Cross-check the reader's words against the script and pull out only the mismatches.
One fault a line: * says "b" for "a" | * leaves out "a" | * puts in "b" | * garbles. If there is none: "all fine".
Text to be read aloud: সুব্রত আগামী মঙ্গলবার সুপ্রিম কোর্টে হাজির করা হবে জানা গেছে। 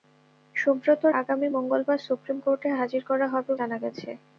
all fine